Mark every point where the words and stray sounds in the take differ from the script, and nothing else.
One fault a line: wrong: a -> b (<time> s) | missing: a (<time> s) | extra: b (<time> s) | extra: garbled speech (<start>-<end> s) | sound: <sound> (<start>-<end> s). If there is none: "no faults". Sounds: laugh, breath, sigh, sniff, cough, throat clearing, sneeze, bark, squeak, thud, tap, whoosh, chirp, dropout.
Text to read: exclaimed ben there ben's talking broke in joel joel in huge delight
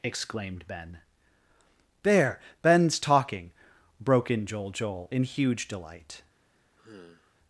sound: sigh (6.8-7.4 s)